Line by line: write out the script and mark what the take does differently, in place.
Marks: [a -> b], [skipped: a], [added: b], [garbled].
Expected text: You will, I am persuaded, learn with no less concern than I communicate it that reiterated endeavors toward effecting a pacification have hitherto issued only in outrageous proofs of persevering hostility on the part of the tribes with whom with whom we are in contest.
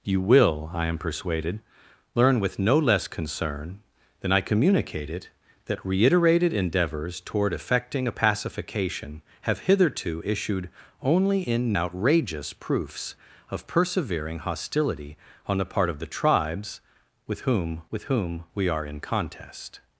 You will, I am persuaded, learn with no less concern than I communicate it that reiterated endeavors toward effecting a pacification have hitherto issued only in outrageous proofs of persevering hostility on the part of the tribes with whom with whom we are in contest.